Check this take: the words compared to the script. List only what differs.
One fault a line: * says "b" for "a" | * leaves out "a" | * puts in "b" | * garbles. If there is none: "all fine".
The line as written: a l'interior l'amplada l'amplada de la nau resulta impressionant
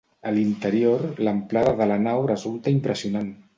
* leaves out "l'amplada"